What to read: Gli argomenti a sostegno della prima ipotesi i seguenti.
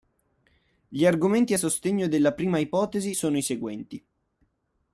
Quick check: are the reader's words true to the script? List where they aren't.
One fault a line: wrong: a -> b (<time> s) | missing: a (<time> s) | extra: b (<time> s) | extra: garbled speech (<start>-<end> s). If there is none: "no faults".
extra: sono (3.1 s)